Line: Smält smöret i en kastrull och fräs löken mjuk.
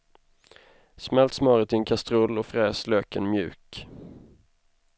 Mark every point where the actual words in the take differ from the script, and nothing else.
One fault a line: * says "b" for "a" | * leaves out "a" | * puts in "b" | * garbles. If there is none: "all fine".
all fine